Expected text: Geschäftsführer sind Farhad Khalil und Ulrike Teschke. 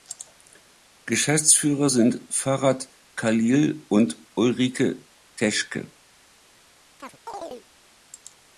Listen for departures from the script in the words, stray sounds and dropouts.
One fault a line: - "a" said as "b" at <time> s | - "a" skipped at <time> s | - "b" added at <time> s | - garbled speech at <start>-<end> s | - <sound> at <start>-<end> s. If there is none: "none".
- chirp at 7.0-7.7 s